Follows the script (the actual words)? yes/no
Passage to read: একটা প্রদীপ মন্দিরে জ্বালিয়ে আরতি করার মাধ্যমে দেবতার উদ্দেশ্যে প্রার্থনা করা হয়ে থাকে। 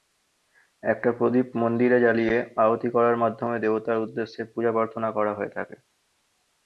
no